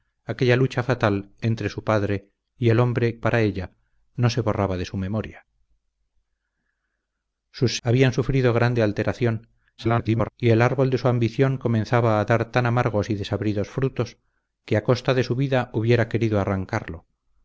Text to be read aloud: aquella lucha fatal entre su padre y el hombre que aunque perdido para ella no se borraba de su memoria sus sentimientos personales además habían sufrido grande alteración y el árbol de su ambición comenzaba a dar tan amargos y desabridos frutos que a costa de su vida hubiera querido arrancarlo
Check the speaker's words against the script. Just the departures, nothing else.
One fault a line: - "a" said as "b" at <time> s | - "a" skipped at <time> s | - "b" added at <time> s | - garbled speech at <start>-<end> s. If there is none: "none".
- "que aunque perdido" skipped at 3.2 s
- "sentimientos personales además" skipped at 7.8 s
- garbled speech at 9.8-10.3 s